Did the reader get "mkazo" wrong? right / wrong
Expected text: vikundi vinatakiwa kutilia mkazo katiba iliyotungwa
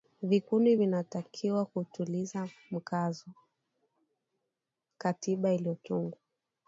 right